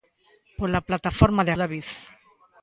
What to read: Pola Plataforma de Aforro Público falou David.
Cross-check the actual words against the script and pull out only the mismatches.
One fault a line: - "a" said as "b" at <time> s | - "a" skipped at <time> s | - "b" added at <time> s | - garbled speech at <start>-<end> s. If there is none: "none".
- "Aforro Público falou" skipped at 1.5 s